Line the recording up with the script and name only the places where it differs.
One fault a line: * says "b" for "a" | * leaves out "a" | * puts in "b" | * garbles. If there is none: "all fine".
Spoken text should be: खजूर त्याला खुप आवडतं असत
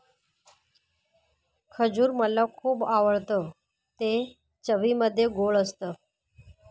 * says "मला" for "त्याला"
* puts in "ते चवीमध्ये गोड"